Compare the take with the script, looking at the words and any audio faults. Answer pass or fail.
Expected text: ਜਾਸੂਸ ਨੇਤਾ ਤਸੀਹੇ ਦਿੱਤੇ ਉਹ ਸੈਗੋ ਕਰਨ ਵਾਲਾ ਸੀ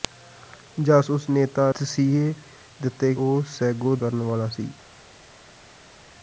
pass